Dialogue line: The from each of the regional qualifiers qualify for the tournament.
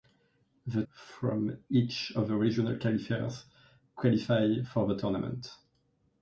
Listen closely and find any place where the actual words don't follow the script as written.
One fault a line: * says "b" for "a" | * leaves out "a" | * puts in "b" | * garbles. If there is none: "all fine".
all fine